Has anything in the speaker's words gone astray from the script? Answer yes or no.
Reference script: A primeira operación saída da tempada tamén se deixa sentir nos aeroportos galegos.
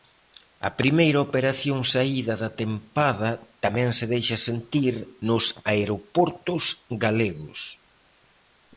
no